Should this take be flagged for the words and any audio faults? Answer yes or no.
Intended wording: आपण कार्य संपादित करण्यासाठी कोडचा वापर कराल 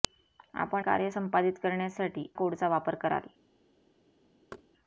yes